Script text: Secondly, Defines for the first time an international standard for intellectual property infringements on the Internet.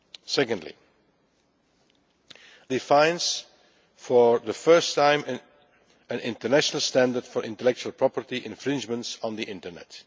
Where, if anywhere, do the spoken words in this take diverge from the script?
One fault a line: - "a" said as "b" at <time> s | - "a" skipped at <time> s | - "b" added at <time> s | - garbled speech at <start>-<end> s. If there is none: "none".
none